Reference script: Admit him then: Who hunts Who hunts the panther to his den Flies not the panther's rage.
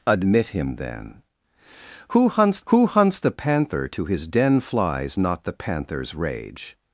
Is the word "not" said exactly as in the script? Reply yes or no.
yes